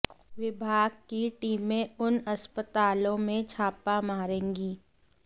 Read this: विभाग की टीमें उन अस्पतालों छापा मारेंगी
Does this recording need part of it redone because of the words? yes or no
yes